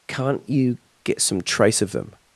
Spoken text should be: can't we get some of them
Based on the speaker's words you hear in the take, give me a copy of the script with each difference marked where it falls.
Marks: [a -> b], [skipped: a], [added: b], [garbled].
can't [we -> you] get some [added: trace] of them